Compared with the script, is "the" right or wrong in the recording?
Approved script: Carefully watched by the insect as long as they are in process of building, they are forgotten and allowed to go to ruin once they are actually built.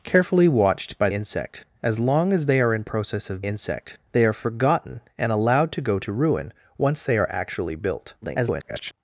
wrong